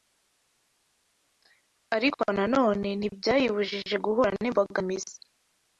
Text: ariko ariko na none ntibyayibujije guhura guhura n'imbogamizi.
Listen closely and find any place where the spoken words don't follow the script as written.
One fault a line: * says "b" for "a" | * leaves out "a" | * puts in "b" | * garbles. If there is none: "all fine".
* leaves out "ariko"
* leaves out "guhura"